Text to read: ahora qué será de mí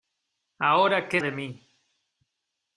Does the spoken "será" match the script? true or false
false